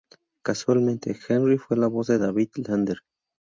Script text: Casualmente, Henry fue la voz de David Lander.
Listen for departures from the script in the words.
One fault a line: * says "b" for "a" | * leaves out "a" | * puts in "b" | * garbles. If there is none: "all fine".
all fine